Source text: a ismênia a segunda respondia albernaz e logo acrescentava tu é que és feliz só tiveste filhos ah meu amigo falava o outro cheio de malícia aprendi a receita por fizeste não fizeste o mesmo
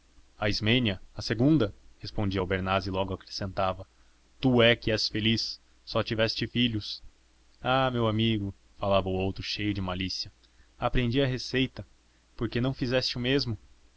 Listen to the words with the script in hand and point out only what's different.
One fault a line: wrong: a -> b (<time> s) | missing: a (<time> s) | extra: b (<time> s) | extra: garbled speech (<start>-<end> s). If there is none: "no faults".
wrong: fizeste -> que (12.5 s)